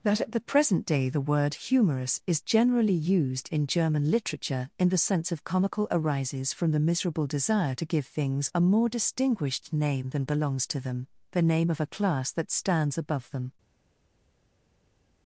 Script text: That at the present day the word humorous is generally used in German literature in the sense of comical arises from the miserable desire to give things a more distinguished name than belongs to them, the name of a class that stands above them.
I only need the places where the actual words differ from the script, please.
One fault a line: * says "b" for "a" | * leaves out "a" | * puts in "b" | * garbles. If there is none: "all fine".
all fine